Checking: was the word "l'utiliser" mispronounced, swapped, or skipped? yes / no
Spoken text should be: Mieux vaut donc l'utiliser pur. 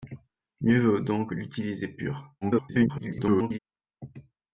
no